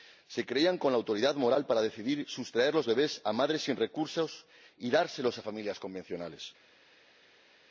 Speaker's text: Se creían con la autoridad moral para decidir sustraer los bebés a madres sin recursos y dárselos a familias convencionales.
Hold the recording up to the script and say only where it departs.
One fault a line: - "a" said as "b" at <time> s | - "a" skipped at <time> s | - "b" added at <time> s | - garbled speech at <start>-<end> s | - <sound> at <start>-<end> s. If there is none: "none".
none